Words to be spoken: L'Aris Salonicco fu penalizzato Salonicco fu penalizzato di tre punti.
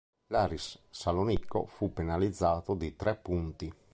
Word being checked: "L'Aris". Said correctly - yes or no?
yes